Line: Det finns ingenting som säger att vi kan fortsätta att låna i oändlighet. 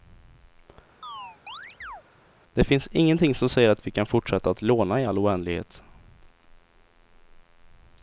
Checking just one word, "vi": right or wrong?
right